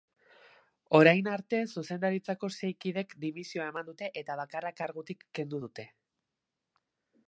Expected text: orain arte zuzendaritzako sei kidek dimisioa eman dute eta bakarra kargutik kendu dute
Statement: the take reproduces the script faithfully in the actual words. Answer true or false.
true